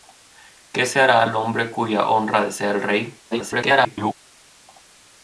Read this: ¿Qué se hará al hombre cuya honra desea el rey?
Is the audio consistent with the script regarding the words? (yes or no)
no